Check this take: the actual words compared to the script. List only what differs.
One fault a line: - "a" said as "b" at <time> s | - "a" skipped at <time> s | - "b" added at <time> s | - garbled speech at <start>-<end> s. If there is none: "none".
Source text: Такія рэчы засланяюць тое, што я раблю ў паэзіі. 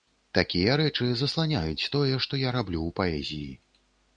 none